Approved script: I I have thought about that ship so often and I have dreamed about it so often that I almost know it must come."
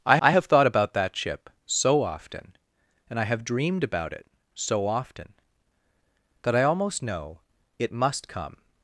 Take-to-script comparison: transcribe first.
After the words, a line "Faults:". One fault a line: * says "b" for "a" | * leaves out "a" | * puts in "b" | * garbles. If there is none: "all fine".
I I have thought about that ship so often and I have dreamed about it so often that I almost know it must come."
Faults:
all fine